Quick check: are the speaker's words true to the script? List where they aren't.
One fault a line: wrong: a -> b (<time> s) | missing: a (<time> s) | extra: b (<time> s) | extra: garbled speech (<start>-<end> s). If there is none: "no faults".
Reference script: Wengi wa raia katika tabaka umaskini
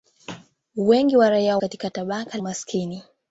no faults